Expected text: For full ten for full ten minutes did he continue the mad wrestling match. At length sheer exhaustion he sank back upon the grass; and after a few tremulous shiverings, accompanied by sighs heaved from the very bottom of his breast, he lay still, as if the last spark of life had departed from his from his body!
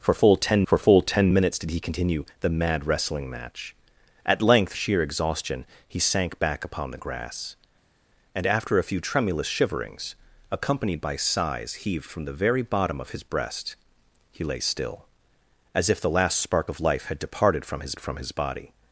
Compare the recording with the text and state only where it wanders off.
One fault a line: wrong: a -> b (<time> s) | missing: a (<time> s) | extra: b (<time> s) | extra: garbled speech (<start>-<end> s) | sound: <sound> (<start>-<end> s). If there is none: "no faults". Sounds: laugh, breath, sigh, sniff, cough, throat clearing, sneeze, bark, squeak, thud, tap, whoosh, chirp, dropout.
no faults